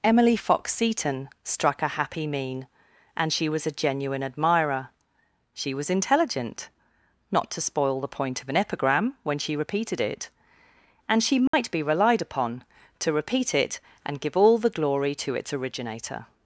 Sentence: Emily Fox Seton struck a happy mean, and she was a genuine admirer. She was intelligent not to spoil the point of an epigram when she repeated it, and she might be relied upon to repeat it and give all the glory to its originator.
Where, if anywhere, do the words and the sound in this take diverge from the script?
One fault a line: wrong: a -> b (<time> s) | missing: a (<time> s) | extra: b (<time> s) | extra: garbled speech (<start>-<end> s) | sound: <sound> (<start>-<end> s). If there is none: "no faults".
sound: dropout (11.5-11.5 s)